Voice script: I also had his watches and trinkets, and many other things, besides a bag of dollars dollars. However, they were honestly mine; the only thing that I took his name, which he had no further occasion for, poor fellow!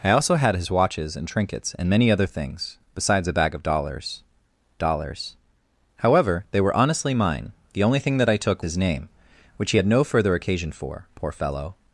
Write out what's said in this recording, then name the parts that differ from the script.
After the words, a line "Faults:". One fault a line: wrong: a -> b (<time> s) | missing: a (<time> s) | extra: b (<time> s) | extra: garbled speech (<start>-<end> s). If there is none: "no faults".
I also had his watches and trinkets, and many other things, besides a bag of dollars dollars. However, they were honestly mine; the only thing that I took his name, which he had no further occasion for, poor fellow!
Faults:
no faults